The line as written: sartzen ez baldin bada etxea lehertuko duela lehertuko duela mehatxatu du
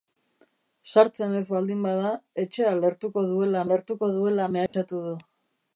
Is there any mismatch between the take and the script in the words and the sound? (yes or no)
yes